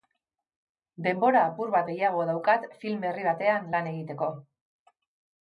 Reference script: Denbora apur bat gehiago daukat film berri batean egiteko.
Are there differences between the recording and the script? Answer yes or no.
yes